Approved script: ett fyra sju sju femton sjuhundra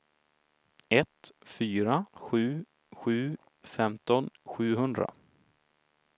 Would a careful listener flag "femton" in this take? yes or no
no